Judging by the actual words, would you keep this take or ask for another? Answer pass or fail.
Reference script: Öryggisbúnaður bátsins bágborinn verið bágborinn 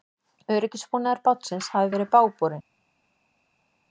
fail